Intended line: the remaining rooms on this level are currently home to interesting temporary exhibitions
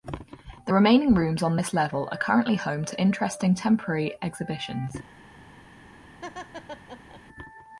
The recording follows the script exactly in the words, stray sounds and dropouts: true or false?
false